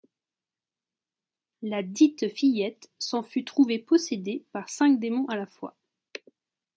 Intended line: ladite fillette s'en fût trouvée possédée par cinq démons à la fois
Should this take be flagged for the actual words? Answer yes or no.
no